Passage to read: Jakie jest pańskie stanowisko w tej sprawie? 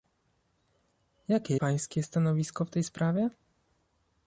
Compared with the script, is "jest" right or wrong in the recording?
wrong